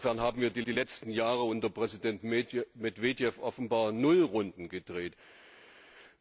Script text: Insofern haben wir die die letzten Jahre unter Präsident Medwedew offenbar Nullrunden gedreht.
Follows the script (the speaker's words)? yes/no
yes